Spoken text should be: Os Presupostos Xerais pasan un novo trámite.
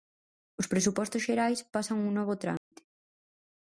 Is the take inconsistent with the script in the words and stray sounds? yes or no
yes